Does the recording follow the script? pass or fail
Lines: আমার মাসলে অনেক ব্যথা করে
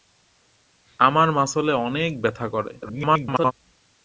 fail